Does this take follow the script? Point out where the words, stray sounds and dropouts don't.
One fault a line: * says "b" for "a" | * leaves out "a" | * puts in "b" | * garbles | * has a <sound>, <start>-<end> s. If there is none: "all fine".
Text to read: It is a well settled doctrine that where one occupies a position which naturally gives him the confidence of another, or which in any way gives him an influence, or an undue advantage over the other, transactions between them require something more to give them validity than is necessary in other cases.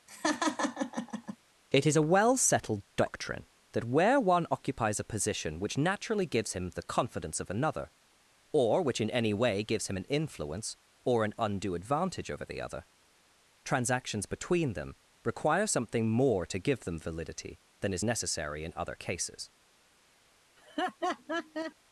* has a laugh, 0.1-1.4 s
* has a laugh, 20.6-21.7 s